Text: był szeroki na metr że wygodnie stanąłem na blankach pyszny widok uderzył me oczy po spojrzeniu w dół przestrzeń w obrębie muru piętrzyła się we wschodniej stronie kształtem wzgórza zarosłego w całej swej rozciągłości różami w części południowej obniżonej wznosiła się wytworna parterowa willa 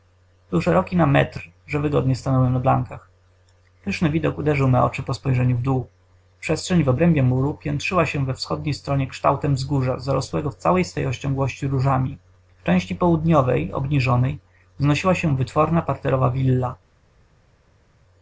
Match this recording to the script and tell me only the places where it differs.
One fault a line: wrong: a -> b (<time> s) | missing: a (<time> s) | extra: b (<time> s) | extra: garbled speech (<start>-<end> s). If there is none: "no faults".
no faults